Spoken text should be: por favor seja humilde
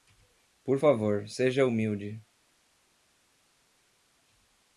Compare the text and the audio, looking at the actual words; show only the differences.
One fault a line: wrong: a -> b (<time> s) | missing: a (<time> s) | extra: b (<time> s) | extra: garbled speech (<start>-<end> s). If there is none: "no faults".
no faults